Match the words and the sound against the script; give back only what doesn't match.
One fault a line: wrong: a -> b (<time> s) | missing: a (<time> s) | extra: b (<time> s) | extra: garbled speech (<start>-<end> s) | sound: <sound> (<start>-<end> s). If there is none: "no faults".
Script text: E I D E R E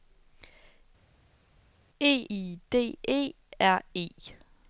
no faults